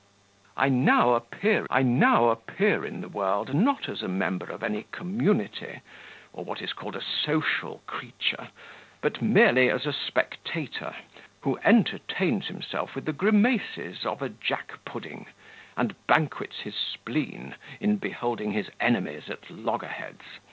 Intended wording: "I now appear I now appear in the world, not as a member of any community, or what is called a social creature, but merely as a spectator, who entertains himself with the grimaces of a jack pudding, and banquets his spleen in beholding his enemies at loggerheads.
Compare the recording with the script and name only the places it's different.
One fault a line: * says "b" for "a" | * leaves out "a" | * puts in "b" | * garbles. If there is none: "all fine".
all fine